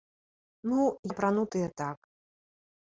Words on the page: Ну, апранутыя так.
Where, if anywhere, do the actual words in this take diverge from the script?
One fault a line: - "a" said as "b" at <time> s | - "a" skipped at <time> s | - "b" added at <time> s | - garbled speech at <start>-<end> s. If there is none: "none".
none